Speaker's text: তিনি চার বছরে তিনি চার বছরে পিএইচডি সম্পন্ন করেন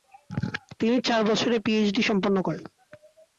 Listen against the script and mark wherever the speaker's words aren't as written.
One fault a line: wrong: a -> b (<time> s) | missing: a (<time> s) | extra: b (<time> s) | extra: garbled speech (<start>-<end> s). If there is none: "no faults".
missing: তিনি চার বছরে (1.6 s)